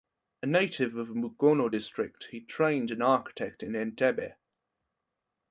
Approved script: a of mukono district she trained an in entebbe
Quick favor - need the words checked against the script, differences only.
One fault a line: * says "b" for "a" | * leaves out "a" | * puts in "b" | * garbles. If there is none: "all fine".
* puts in "native"
* says "he" for "she"
* puts in "architect"